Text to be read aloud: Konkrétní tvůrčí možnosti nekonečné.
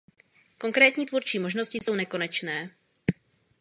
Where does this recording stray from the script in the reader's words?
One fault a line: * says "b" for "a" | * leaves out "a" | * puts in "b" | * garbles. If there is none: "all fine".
* puts in "jsou"